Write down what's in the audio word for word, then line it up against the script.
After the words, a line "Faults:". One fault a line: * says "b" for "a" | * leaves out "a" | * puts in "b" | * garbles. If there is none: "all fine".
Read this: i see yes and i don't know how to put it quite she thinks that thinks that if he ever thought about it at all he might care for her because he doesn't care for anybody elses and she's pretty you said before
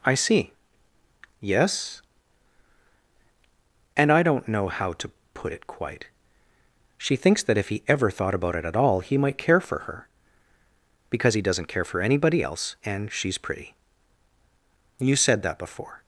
i see yes and i don't know how to put it quite she thinks that if he ever thought about it at all he might care for her because he doesn't care for anybody else and she's pretty you said that before
Faults:
* leaves out "thinks that"
* says "else" for "elses"
* puts in "that"